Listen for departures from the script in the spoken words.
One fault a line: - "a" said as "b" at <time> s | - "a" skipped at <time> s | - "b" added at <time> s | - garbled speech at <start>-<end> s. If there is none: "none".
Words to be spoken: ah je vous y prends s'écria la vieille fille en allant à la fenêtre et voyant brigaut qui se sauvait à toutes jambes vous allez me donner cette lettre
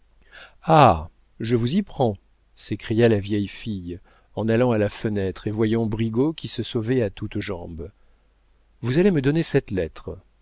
none